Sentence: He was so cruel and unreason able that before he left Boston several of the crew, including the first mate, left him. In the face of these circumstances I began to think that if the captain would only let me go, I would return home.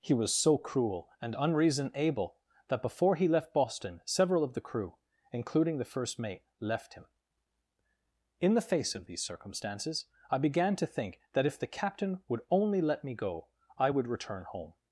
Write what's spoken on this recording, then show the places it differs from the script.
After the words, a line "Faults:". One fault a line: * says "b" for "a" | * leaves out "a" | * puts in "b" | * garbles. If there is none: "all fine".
He was so cruel and unreason able that before he left Boston several of the crew, including the first mate, left him. In the face of these circumstances I began to think that if the captain would only let me go, I would return home.
Faults:
all fine